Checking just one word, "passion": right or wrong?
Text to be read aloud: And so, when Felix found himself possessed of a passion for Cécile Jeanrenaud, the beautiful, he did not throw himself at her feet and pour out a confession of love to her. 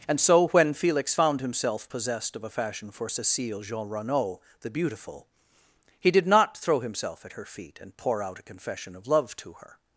wrong